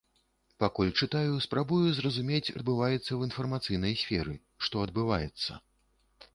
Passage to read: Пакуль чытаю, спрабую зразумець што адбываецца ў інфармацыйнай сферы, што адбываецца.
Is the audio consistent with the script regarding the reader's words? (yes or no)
no